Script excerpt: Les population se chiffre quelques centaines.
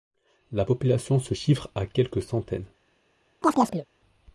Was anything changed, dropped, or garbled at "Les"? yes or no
yes